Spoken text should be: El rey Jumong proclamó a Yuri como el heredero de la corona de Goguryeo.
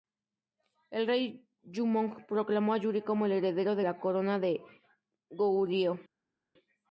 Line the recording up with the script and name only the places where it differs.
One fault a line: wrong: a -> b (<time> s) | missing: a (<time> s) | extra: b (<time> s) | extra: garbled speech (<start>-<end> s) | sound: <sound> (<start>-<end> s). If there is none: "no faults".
no faults